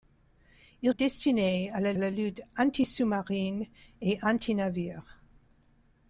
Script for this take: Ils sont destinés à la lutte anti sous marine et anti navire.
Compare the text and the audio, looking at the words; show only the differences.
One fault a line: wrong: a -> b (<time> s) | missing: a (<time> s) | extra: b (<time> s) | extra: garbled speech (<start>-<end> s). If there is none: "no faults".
missing: sont (0.9 s)
extra: la (2.0 s)